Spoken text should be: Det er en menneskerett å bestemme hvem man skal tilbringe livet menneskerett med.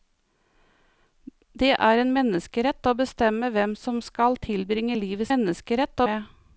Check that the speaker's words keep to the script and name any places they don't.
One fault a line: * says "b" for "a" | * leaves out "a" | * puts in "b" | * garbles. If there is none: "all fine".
all fine